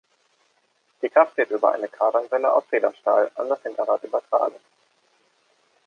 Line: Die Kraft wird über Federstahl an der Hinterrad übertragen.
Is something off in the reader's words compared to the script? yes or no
yes